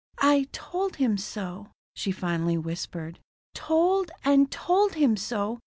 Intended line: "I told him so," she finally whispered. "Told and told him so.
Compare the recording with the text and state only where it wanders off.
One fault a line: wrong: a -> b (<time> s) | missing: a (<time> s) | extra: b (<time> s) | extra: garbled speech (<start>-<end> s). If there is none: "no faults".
no faults